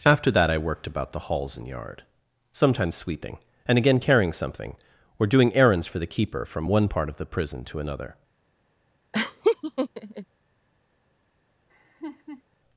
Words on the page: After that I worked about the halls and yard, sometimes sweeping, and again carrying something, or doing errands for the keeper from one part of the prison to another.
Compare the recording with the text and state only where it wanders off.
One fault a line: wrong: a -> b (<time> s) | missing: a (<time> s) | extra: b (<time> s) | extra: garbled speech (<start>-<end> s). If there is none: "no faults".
no faults